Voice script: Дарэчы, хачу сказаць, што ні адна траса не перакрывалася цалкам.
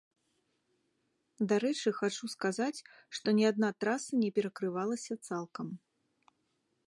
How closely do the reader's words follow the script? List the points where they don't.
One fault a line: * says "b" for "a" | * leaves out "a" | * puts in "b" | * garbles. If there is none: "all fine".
all fine